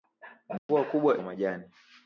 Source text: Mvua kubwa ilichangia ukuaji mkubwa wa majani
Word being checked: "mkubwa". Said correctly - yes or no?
no